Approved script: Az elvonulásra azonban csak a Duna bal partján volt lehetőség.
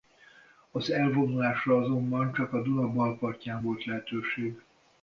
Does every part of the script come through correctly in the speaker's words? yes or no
yes